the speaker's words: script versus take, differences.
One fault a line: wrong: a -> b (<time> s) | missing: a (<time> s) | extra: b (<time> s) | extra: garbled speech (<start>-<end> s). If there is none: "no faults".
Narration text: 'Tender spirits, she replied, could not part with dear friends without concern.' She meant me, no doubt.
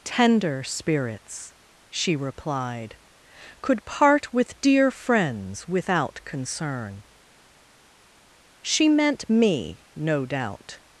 missing: not (3.9 s)